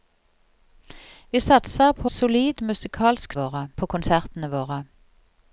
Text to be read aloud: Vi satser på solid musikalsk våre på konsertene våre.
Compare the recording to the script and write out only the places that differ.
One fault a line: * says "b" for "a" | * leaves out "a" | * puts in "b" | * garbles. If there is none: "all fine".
all fine